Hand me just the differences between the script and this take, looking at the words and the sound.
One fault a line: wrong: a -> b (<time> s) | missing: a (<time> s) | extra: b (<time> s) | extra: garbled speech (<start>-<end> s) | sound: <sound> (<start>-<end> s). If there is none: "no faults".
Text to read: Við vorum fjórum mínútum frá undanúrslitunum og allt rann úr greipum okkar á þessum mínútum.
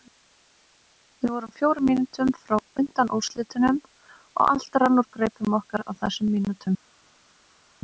no faults